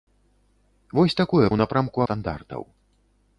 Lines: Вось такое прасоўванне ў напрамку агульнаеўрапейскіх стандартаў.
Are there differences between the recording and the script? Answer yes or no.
yes